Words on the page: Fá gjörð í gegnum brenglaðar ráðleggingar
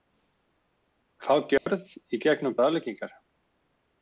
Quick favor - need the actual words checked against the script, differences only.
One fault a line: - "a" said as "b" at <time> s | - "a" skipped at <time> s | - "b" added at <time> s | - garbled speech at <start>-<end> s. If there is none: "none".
- "brenglaðar" skipped at 2.5 s